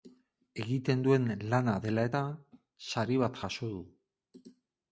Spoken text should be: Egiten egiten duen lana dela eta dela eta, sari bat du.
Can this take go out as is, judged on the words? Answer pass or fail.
fail